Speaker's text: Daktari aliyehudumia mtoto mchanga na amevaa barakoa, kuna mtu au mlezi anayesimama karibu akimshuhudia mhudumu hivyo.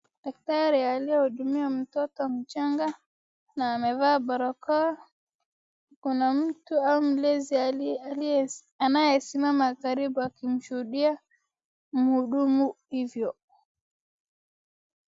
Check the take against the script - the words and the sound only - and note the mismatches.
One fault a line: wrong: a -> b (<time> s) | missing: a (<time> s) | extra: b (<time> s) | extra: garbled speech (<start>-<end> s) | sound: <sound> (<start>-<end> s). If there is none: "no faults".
no faults